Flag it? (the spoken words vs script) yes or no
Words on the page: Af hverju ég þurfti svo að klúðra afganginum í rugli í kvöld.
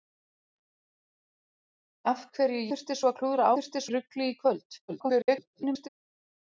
yes